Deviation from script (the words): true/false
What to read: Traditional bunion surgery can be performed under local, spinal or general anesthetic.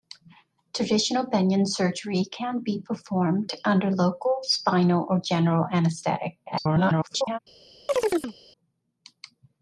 true